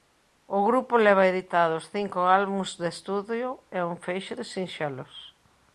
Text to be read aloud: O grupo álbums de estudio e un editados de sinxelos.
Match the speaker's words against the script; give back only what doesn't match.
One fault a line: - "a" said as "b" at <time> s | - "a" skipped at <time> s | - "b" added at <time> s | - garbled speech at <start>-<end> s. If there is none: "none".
- "leva editados cinco" added at 1.1 s
- "editados" said as "feixe" at 4.0 s